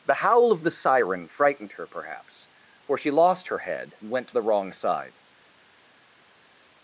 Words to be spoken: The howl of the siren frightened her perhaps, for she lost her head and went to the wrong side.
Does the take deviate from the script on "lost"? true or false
false